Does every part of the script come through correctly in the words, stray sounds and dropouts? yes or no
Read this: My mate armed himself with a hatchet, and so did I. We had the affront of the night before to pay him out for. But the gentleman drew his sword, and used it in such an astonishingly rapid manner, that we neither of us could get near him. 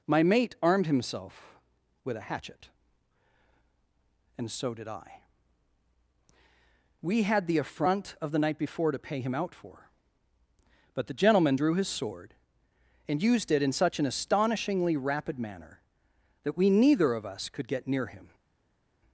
yes